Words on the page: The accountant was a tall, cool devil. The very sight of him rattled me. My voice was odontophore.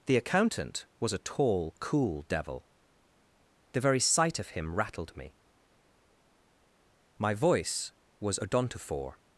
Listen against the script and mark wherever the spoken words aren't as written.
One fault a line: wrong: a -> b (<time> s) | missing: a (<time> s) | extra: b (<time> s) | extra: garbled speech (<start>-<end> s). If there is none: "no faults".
no faults